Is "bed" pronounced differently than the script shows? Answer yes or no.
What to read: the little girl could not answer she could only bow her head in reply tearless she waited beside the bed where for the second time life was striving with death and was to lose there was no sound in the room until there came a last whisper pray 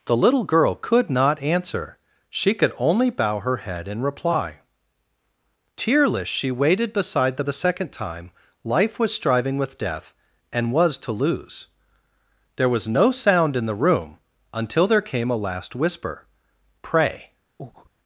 yes